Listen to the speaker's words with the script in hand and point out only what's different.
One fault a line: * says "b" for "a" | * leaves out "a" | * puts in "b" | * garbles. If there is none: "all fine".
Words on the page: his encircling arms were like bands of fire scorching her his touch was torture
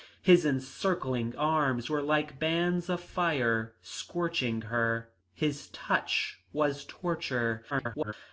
* garbles